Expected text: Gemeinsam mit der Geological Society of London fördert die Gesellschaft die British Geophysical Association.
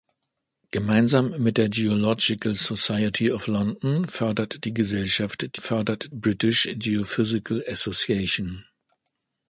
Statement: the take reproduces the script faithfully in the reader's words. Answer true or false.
false